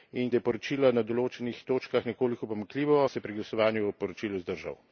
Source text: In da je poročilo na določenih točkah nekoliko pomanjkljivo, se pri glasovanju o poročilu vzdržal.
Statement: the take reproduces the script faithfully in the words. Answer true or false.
true